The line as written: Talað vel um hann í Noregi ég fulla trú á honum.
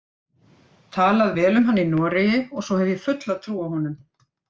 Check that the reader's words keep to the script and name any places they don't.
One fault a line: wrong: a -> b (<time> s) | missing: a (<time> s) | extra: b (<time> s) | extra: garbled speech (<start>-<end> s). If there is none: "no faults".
extra: og svo hef (2.4 s)